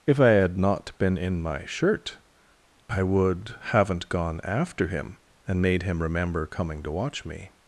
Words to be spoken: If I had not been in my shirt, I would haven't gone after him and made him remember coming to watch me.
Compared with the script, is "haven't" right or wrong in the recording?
right